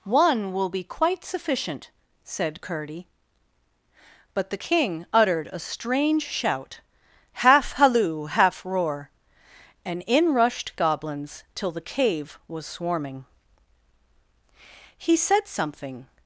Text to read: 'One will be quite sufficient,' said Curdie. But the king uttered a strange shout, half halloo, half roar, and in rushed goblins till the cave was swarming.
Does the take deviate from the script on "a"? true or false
false